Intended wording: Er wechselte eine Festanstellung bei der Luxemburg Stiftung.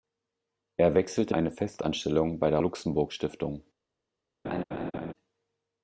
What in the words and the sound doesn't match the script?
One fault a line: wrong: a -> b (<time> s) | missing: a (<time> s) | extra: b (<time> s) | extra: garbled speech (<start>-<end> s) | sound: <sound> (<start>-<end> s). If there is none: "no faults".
sound: laugh (4.4-5.1 s)